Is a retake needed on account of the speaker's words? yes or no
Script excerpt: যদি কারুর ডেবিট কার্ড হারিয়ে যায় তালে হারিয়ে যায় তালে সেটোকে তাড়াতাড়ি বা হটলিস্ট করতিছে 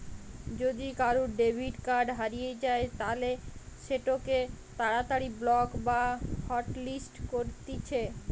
yes